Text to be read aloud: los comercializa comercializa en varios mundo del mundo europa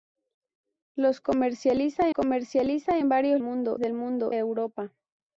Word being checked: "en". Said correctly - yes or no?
yes